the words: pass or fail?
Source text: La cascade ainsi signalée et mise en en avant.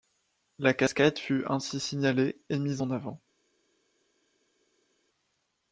fail